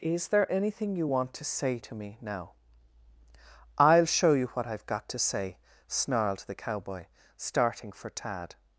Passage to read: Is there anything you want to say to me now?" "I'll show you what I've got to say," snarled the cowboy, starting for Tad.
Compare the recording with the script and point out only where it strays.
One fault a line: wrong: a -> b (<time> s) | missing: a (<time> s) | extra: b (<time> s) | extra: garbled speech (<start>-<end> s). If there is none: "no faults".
no faults